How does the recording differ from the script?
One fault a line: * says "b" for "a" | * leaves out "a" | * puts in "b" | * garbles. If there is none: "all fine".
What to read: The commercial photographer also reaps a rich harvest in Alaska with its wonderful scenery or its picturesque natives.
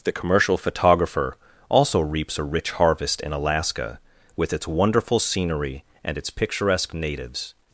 * says "and" for "or"